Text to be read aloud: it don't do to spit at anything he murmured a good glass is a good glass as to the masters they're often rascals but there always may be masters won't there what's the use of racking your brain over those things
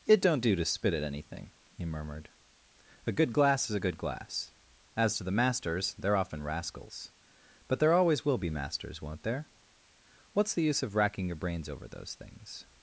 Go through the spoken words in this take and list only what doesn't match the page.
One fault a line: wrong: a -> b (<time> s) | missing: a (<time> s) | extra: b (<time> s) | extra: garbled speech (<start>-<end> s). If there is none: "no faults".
wrong: may -> will (8.2 s)
wrong: brain -> brains (11.3 s)